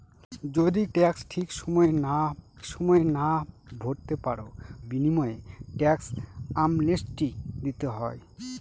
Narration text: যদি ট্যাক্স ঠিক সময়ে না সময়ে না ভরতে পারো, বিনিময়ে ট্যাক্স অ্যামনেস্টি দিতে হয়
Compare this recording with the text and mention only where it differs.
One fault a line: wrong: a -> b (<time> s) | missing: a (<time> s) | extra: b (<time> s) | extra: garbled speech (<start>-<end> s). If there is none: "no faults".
no faults